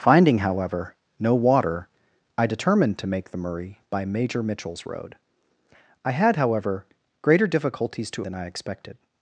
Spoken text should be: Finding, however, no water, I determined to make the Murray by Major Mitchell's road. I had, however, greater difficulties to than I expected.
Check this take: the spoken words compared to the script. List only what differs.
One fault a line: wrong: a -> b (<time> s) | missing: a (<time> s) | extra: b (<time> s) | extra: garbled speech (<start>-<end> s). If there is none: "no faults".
no faults